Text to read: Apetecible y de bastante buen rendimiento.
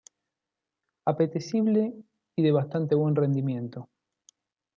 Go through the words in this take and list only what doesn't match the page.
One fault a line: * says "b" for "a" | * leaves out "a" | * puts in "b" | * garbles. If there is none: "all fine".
all fine